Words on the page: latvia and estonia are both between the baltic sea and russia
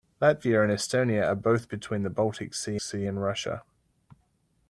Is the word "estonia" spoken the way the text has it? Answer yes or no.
yes